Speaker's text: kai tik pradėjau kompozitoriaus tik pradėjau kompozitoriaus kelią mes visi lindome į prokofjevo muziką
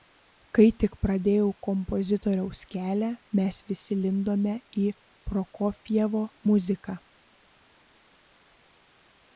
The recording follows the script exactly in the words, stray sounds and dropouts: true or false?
false